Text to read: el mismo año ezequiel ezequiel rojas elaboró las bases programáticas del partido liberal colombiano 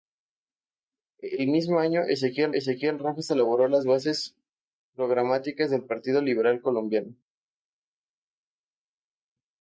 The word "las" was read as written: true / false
true